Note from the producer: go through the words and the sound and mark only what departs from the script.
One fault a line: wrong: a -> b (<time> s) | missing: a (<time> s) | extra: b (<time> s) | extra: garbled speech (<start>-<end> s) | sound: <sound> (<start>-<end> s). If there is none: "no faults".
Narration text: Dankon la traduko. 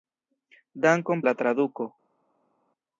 no faults